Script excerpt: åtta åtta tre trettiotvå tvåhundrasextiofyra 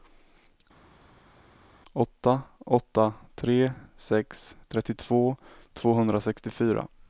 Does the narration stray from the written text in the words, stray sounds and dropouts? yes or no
yes